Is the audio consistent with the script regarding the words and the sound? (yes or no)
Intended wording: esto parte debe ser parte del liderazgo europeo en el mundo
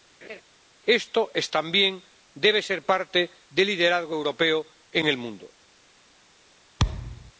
no